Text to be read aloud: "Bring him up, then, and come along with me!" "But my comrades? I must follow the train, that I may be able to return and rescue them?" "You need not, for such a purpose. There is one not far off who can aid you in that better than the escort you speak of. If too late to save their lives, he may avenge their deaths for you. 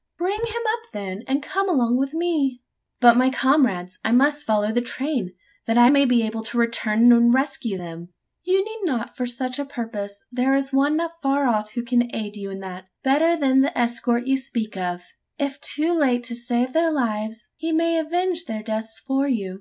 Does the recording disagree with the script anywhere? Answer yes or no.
no